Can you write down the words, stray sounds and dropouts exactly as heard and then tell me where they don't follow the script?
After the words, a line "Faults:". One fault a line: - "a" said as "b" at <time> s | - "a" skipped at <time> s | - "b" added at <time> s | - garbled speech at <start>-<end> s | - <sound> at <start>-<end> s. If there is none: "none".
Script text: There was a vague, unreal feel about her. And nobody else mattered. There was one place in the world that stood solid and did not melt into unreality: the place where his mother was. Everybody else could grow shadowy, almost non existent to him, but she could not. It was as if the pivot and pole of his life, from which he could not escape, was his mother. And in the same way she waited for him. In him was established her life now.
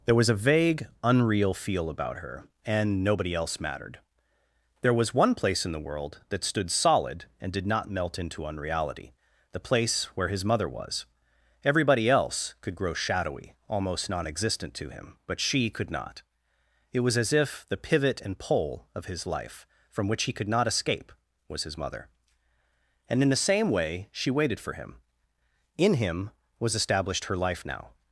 There was a vague, unreal feel about her. And nobody else mattered. There was one place in the world that stood solid and did not melt into unreality: the place where his mother was. Everybody else could grow shadowy, almost non existent to him, but she could not. It was as if the pivot and pole of his life, from which he could not escape, was his mother. And in the same way she waited for him. In him was established her life now.
Faults:
none